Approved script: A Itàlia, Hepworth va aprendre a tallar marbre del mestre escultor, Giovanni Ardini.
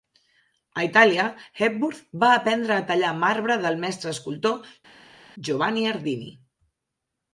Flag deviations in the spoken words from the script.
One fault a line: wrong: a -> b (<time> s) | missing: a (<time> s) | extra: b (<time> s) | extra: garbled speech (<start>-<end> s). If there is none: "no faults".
no faults